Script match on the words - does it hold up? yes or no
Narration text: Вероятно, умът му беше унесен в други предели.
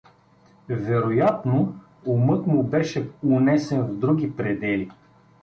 yes